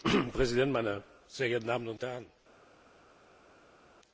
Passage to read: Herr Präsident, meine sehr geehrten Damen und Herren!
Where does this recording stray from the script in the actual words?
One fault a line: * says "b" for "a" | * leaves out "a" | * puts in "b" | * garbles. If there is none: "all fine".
all fine